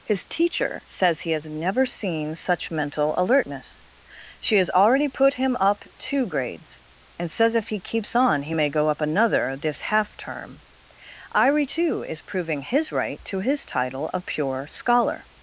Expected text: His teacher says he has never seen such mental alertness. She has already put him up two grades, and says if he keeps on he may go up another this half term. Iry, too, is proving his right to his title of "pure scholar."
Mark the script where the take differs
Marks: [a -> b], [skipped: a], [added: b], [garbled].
His teacher says he has never seen such mental alertness. She has already put him up two grades, and says if he keeps on he may go up another this half term. Iry, too, is proving his right to his title of "pure scholar."